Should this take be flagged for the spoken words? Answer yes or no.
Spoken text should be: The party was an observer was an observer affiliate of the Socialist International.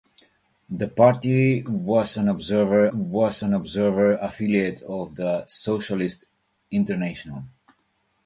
no